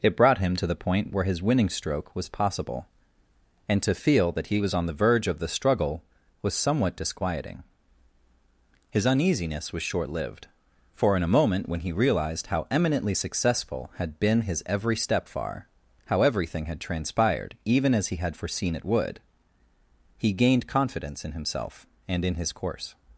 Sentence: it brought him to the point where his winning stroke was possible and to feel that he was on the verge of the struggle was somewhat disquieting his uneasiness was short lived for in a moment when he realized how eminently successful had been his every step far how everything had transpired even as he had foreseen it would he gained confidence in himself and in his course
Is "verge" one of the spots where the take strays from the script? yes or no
no